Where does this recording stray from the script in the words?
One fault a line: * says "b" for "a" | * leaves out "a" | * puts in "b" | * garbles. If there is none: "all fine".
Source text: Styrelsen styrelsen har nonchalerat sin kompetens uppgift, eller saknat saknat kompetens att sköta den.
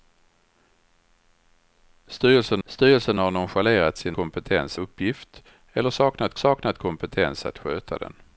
all fine